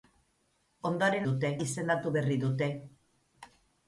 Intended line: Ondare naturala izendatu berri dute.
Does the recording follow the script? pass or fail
fail